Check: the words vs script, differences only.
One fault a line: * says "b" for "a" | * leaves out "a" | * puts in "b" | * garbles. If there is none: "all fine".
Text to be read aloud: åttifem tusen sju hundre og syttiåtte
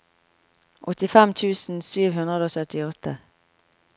all fine